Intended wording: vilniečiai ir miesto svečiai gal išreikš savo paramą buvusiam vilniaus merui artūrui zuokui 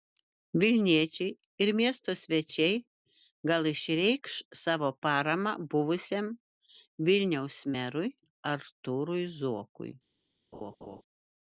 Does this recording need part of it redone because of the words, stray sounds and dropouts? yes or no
yes